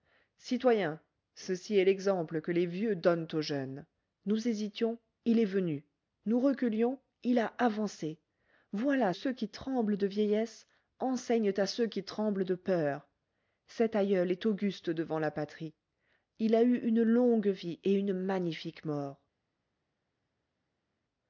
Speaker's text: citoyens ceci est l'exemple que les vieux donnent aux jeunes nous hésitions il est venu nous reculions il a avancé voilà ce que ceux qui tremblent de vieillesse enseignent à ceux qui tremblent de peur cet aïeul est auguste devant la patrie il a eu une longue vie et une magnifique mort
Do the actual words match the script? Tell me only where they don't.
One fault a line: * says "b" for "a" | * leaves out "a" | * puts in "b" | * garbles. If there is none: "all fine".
* leaves out "ce que"